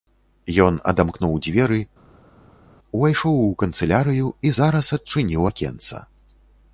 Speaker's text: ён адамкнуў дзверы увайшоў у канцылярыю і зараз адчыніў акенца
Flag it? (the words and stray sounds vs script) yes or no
no